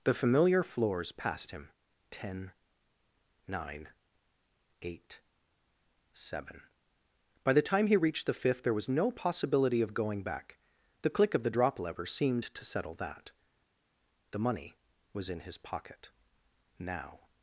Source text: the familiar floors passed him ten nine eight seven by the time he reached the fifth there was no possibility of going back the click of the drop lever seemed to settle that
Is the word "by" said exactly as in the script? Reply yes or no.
yes